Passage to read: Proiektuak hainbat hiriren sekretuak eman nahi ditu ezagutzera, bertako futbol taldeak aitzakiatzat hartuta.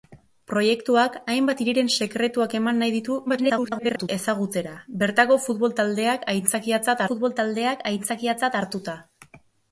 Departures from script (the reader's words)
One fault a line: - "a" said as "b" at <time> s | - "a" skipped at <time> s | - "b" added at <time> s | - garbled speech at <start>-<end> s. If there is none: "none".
- garbled speech at 3.3-4.1 s
- "futbol taldeak aitzakiatzat" added at 7.1 s